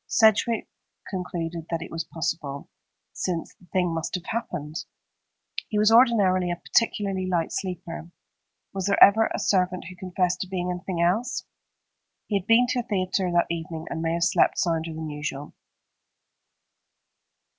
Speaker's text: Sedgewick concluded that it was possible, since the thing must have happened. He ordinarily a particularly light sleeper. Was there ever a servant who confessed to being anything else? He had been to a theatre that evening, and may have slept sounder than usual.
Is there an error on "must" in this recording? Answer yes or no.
no